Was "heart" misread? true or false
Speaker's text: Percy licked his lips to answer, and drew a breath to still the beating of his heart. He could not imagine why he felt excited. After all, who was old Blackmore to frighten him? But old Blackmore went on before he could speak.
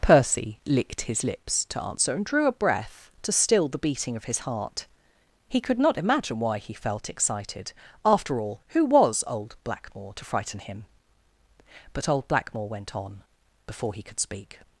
false